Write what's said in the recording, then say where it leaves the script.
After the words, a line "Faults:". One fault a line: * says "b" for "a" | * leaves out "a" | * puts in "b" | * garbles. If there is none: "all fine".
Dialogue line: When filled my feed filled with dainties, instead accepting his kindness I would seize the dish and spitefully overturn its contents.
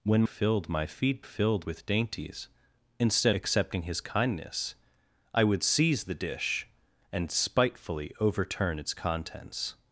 When filled my feed filled with dainties, instead accepting his kindness I would seize the dish and spitefully overturn its contents.
Faults:
all fine